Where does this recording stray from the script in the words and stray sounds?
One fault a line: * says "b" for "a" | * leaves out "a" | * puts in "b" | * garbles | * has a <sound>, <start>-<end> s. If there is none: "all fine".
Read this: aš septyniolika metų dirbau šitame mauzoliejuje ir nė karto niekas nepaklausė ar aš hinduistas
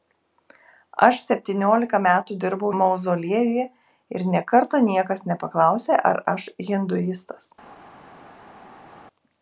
* leaves out "šitame"